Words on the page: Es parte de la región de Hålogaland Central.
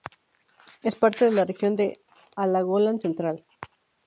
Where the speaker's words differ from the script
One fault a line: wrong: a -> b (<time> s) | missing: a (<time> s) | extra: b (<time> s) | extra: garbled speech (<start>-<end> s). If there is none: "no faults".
no faults